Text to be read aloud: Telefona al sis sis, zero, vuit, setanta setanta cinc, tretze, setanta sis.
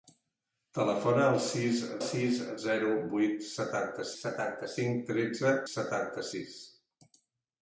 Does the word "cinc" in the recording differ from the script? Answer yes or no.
no